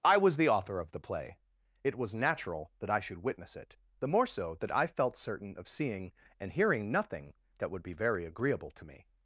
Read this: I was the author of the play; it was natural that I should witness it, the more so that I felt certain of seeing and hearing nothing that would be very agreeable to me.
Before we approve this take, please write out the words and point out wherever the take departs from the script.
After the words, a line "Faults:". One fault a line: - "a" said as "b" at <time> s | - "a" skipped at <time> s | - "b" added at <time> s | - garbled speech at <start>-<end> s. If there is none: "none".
I was the author of the play; it was natural that I should witness it, the more so that I felt certain of seeing and hearing nothing that would be very agreeable to me.
Faults:
none